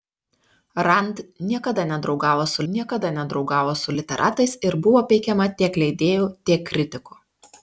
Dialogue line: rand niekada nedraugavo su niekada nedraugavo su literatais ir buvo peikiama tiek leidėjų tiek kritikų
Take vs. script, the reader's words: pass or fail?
pass